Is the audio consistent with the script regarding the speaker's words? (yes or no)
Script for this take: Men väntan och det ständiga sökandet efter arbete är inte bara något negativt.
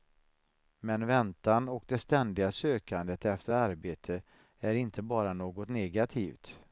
yes